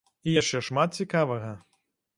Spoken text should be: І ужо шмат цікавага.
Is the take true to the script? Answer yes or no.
no